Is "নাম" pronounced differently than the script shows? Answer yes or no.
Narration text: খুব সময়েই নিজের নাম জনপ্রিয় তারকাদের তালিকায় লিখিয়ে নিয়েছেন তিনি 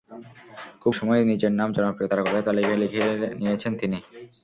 no